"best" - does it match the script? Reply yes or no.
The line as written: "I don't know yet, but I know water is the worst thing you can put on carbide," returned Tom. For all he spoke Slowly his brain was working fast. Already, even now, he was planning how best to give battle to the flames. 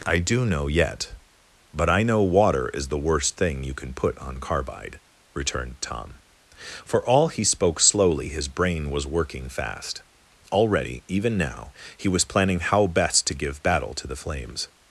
yes